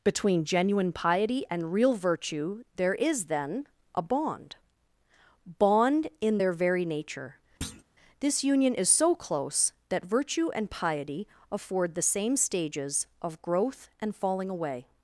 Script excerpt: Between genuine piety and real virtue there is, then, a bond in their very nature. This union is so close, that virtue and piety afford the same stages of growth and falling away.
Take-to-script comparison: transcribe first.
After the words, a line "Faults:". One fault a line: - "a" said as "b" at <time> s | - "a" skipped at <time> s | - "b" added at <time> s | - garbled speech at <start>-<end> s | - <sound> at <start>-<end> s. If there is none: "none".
Between genuine piety and real virtue there is, then, a bond bond in their very nature. This union is so close, that virtue and piety afford the same stages of growth and falling away.
Faults:
- "bond" added at 5.6 s
- thud at 7.6-7.8 s